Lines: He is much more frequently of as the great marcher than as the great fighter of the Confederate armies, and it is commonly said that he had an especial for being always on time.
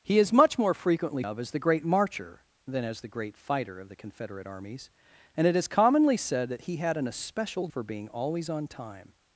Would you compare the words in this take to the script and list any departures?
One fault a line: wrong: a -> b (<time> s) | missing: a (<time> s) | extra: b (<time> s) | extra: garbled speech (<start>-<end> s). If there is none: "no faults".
no faults